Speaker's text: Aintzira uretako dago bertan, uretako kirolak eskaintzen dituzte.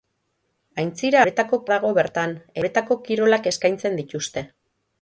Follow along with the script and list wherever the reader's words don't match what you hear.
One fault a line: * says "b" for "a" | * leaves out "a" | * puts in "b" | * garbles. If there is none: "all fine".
all fine